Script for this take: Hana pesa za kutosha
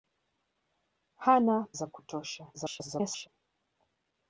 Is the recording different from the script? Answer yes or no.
yes